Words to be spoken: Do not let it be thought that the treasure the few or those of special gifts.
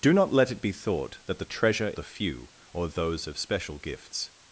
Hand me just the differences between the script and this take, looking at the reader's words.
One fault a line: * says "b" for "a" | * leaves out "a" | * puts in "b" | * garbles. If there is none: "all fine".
all fine